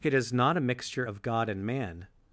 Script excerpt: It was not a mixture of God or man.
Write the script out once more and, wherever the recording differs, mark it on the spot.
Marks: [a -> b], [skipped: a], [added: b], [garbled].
It [was -> is] not a mixture of God [or -> and] man.